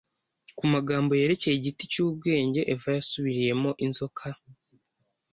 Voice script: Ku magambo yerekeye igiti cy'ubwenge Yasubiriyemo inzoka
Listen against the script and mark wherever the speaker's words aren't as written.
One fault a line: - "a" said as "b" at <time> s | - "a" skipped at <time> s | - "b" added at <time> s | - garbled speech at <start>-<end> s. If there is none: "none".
- "Eva" added at 2.7 s